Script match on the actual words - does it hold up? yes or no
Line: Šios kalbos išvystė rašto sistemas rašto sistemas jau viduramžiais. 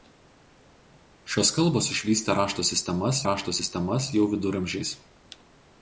yes